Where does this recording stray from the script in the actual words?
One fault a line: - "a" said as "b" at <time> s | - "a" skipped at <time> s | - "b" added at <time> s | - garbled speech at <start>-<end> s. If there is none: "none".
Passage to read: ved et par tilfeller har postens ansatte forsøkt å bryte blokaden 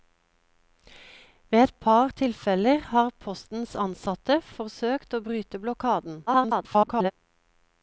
- garbled speech at 6.3-7.1 s